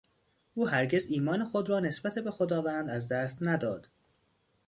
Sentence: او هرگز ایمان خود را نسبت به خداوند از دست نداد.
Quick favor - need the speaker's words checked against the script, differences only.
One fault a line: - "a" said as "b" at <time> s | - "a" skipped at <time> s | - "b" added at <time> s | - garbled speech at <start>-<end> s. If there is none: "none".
none